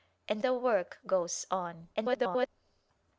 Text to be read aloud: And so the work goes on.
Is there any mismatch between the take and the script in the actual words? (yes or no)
yes